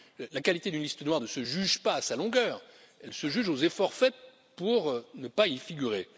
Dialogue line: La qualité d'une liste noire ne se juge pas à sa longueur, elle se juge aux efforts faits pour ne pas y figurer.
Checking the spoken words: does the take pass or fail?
pass